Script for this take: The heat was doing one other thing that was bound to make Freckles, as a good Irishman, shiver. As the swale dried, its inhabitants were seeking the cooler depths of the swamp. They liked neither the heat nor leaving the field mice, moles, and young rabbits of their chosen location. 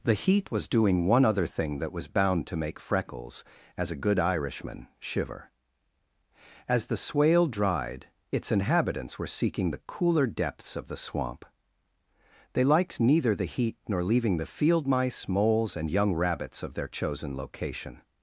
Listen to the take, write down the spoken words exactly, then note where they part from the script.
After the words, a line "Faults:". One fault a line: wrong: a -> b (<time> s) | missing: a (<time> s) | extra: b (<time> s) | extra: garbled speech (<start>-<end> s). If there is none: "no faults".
The heat was doing one other thing that was bound to make Freckles, as a good Irishman, shiver. As the swale dried, its inhabitants were seeking the cooler depths of the swamp. They liked neither the heat nor leaving the field mice, moles, and young rabbits of their chosen location.
Faults:
no faults